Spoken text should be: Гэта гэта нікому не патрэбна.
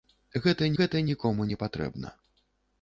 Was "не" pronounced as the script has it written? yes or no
yes